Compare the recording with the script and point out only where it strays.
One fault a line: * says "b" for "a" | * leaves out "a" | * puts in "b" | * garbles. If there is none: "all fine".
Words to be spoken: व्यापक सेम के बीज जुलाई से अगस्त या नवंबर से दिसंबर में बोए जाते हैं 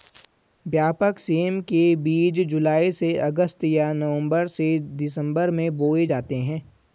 all fine